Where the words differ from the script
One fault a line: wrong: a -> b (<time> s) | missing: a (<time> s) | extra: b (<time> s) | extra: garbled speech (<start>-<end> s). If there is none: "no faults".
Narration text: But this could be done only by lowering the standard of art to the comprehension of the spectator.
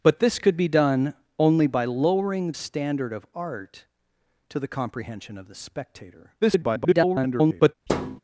missing: the (2.5 s)
extra: garbled speech (6.4-7.8 s)